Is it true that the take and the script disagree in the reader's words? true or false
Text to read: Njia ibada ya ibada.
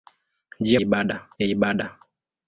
false